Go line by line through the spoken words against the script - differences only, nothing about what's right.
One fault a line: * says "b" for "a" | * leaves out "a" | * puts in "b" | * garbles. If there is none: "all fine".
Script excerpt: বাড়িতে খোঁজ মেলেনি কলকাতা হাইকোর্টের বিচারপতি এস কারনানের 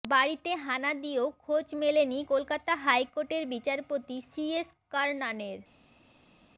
* puts in "হানা দিয়েও"
* puts in "সি"